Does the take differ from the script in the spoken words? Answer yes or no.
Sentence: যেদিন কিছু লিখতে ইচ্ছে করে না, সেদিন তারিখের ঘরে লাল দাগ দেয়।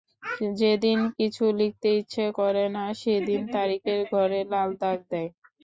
no